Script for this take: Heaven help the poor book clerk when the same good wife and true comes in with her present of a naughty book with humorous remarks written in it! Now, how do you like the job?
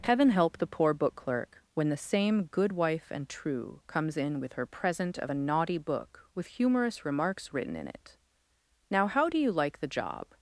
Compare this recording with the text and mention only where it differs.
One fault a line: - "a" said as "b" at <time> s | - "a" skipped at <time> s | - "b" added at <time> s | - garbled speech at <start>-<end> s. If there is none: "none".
none